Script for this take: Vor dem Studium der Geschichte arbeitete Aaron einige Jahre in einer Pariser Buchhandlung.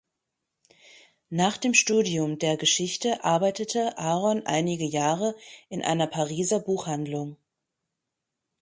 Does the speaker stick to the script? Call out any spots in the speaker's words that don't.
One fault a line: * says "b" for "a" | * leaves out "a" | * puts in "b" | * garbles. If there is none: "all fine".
* says "Nach" for "Vor"